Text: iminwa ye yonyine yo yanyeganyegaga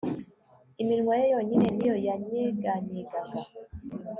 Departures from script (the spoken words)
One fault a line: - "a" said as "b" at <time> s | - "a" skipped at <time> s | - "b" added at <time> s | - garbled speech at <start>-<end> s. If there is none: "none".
- "ni" added at 1.7 s